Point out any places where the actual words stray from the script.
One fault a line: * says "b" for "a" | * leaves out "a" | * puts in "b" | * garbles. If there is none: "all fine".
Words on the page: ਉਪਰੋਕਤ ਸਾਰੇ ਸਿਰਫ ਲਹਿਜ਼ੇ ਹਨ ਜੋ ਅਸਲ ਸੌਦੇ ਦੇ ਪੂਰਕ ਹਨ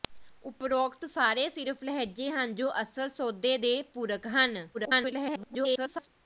* garbles